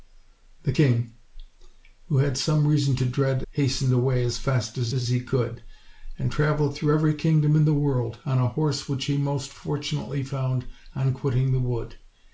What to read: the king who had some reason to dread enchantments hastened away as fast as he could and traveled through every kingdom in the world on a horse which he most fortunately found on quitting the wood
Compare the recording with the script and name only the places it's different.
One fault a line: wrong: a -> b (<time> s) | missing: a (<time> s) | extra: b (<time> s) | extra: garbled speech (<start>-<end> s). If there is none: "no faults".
missing: enchantments (3.4 s)
extra: as (4.9 s)